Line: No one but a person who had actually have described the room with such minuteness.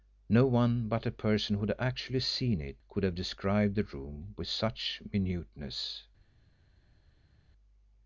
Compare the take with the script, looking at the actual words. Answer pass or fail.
fail